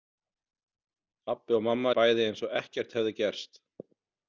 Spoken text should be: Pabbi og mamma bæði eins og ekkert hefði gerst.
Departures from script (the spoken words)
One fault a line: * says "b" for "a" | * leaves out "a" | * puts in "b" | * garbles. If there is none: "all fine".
all fine